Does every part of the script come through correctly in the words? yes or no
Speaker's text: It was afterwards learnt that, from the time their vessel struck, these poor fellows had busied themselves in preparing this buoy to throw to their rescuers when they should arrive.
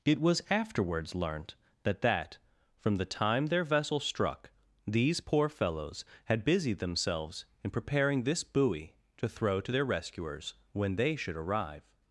no